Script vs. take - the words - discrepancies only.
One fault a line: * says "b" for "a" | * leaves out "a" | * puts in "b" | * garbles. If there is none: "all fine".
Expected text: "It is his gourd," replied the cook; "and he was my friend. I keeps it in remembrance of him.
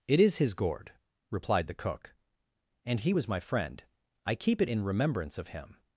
* says "keep" for "keeps"